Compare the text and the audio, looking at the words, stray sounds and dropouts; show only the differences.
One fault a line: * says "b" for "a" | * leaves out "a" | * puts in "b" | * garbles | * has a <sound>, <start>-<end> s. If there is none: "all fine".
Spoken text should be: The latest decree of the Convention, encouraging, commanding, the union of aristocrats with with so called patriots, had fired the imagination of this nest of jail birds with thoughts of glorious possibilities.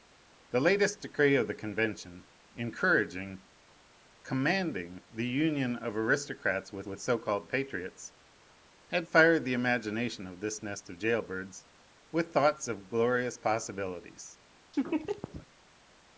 * has a laugh, 14.7-15.5 s